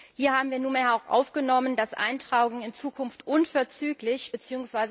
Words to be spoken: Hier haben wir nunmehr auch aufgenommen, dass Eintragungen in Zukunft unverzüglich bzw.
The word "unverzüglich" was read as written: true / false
true